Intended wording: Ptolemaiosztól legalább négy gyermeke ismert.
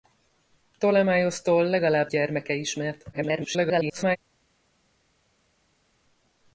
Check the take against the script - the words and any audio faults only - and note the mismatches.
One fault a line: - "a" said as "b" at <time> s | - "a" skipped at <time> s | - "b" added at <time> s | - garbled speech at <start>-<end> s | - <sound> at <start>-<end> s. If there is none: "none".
- "négy" skipped at 2.1 s
- garbled speech at 3.1-4.2 s